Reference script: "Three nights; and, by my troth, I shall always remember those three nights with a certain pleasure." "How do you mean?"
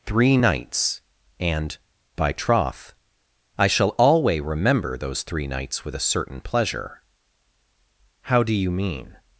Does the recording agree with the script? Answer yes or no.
no